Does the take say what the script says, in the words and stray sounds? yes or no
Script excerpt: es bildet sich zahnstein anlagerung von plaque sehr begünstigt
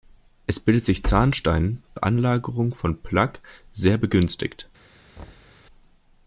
no